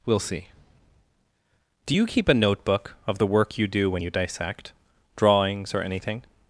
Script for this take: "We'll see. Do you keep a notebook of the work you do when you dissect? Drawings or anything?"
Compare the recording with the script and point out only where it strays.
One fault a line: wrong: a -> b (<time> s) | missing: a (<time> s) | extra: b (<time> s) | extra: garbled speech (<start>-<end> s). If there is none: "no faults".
no faults